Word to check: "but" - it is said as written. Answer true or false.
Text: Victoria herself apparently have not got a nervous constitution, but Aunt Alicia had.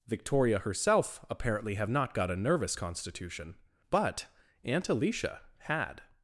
true